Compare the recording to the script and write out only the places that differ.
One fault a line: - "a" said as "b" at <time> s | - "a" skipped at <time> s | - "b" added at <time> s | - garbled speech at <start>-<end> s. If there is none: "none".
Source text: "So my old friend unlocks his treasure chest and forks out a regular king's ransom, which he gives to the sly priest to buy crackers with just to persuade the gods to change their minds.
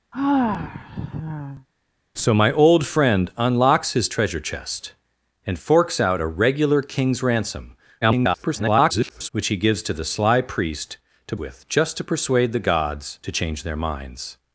- garbled speech at 8.0-9.3 s
- "buy crackers" skipped at 11.3 s